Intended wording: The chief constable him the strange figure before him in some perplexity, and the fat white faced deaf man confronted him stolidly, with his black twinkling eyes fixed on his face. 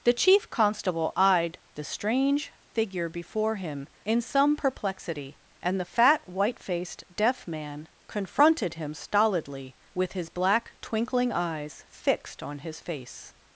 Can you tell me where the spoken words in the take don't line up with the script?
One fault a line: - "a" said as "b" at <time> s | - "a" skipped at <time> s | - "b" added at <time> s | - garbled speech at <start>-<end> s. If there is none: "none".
- "him" said as "eyed" at 1.1 s